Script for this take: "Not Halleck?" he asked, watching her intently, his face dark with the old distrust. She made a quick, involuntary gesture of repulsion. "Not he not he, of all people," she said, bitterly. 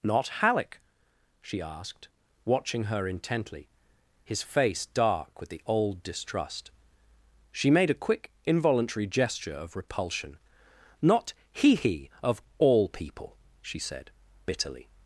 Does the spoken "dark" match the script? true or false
true